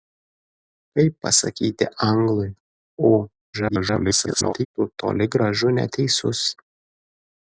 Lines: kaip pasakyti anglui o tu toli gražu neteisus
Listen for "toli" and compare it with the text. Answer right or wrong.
right